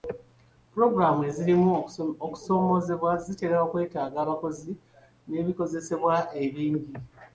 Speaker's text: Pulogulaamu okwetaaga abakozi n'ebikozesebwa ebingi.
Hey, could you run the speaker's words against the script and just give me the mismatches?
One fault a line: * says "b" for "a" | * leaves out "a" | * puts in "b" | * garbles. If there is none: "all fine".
* puts in "ezirimu okusoomoozebwa zitera"